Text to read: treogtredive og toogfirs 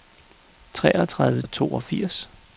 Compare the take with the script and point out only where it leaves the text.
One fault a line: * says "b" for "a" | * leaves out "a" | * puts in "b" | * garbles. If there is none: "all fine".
all fine